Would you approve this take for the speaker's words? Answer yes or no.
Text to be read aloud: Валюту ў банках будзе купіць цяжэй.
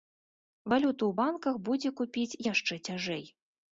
no